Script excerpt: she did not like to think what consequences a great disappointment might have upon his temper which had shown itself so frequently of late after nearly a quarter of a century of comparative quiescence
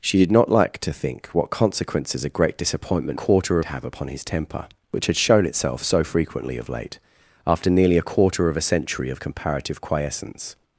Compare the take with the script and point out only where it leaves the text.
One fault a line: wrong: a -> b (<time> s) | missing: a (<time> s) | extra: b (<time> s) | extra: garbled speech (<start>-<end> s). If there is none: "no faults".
wrong: might -> quarter (3.1 s)